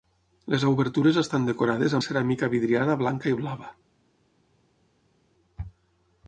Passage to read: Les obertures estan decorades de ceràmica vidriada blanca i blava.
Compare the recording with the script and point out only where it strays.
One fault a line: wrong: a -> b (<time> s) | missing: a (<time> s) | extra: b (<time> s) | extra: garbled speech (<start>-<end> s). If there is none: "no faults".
no faults